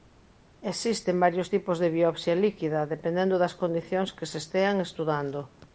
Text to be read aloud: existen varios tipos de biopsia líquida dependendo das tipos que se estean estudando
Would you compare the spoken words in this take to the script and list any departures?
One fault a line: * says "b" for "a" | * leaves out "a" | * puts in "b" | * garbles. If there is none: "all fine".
* says "condicións" for "tipos"